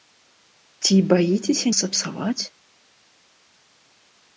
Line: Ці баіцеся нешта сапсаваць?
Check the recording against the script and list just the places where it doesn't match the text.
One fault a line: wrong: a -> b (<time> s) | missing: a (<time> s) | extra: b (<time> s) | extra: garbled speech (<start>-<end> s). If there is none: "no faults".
missing: нешта (1.7 s)